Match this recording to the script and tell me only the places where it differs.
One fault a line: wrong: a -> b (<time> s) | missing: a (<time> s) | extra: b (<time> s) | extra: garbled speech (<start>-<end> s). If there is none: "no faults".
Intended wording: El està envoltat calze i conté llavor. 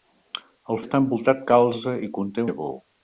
no faults